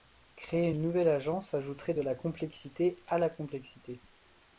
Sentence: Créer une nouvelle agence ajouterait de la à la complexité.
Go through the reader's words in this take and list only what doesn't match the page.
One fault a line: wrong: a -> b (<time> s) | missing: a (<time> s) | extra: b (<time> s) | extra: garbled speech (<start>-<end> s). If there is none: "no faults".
extra: complexité (2.1 s)